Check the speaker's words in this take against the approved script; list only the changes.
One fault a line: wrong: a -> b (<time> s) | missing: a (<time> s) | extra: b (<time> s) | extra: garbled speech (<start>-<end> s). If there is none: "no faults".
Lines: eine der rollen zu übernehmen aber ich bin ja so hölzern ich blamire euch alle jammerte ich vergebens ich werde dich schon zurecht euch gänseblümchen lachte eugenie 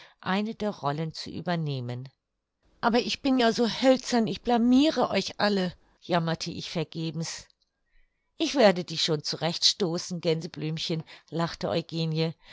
wrong: euch -> stoßen (9.6 s)